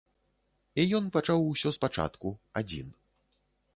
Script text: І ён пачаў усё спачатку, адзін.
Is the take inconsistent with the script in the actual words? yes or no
no